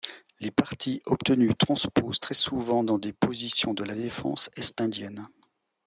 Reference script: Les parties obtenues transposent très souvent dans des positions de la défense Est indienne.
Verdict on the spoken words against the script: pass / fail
pass